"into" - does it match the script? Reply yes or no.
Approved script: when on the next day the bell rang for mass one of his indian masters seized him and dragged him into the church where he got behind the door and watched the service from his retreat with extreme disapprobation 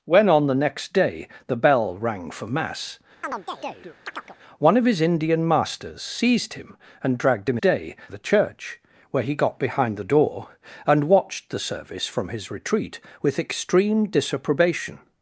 no